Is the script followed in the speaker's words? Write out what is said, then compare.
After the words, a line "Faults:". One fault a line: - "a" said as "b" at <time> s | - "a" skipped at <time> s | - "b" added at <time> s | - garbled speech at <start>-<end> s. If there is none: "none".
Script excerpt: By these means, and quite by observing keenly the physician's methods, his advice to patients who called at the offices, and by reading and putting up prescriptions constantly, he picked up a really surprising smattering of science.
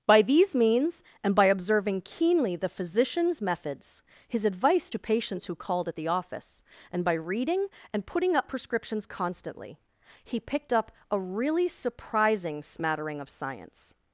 By these means, and by observing keenly the physician's methods, his advice to patients who called at the office, and by reading and putting up prescriptions constantly, he picked up a really surprising smattering of science.
Faults:
- "quite" skipped at 1.4 s
- "offices" said as "office" at 6.1 s